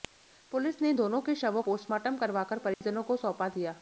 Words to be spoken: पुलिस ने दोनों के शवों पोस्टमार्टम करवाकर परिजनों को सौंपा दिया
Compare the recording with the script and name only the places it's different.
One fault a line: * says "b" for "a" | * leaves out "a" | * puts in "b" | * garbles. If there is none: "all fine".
all fine